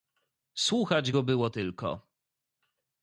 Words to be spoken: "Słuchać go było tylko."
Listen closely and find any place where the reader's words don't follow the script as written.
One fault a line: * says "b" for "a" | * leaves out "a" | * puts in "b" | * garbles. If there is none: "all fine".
all fine